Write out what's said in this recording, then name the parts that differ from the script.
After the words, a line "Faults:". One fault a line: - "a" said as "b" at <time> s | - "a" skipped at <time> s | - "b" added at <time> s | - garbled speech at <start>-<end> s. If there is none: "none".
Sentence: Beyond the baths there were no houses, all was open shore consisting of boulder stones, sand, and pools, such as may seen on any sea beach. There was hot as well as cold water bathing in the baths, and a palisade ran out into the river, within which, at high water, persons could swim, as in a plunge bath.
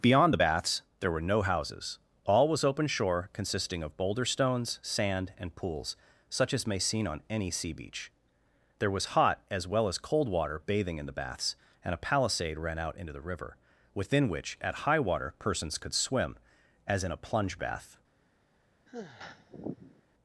Beyond the baths there were no houses, all was open shore consisting of boulder stones, sand, and pools, such as may seen on any sea beach. There was hot as well as cold water bathing in the baths, and a palisade ran out into the river, within which, at high water, persons could swim, as in a plunge bath.
Faults:
none